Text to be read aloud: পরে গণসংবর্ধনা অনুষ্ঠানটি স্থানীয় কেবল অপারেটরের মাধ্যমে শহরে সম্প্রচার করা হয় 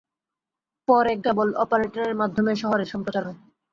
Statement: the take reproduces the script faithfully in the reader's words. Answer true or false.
false